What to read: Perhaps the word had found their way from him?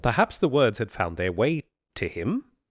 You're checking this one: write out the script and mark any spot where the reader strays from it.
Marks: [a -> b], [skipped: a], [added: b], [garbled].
Perhaps the [word -> words] had found their way [from -> to] him?